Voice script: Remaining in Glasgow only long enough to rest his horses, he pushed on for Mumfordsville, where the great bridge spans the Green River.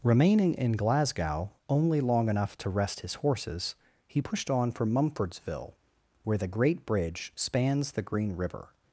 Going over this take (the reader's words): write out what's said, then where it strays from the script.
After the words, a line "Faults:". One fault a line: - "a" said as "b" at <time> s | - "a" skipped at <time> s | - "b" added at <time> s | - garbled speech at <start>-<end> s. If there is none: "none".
Remaining in Glasgow only long enough to rest his horses, he pushed on for Mumfordsville, where the great bridge spans the Green River.
Faults:
none